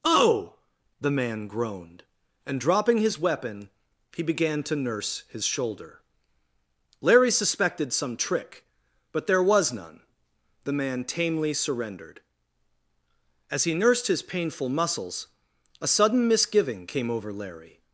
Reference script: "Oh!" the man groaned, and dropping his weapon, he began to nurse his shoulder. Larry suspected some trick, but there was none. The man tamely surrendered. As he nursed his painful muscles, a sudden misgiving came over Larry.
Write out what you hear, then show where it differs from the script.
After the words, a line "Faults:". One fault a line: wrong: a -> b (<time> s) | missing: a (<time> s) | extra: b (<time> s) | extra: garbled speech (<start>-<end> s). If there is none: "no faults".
"Oh!" the man groaned, and dropping his weapon, he began to nurse his shoulder. Larry suspected some trick, but there was none. The man tamely surrendered. As he nursed his painful muscles, a sudden misgiving came over Larry.
Faults:
no faults